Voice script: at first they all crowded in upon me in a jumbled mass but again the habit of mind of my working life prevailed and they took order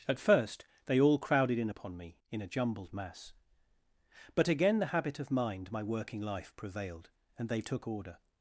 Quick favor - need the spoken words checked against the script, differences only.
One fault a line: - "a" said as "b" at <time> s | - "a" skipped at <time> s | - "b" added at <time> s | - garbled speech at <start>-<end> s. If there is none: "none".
- "of" skipped at 5.7 s